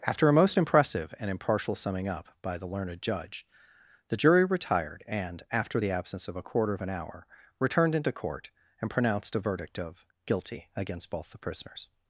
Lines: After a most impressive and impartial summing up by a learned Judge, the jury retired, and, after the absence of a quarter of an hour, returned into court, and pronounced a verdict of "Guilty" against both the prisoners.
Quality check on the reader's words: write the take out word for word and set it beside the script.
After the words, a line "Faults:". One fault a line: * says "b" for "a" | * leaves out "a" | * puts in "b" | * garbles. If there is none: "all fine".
After a most impressive and impartial summing up by the learned Judge, the jury retired, and, after the absence of a quarter of an hour, returned into court, and pronounced a verdict of "Guilty" against both the prisoners.
Faults:
* says "the" for "a"